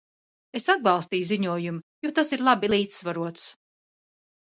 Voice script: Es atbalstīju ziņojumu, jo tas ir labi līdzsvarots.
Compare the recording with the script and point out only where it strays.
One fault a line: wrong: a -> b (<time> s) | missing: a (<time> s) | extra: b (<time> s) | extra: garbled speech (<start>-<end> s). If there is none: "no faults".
no faults